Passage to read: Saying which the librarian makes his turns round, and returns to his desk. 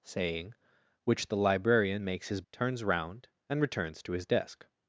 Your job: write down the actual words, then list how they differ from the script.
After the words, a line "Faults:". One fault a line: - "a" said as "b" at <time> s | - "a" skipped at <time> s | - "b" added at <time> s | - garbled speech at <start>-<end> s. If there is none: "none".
Saying which the librarian makes his turns round, and returns to his desk.
Faults:
none